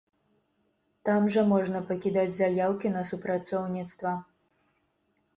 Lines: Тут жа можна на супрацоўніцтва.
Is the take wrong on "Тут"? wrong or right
wrong